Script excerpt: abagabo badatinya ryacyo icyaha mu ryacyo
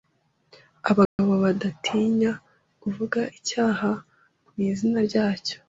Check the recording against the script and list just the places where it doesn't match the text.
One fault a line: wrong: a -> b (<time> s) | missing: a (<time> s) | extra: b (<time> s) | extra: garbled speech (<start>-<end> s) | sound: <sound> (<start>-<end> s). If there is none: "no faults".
sound: dropout (1.1-1.2 s)
wrong: ryacyo -> kuvuga (2.8 s)
extra: izina (4.7 s)